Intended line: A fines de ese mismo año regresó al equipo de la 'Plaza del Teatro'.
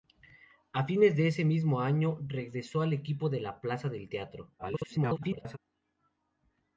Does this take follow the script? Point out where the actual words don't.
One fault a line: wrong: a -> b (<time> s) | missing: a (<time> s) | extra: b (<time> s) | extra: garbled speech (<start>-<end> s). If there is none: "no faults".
extra: garbled speech (4.6-5.6 s)